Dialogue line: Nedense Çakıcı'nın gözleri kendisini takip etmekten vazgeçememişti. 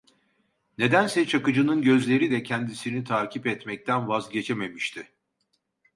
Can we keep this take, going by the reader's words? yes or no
no